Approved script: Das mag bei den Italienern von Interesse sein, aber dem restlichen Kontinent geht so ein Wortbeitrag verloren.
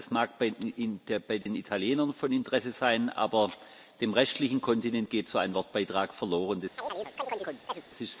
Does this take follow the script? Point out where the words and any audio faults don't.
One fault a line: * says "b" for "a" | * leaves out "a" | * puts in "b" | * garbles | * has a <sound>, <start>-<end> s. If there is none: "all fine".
* has a dropout, 1.4-1.5 s
* has a chirp, 6.8-7.9 s